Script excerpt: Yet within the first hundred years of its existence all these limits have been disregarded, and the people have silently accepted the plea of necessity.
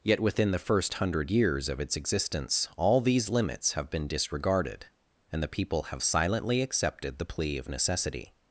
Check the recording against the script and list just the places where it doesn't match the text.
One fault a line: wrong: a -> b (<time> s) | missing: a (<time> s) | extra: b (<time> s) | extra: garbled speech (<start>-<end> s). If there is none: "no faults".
no faults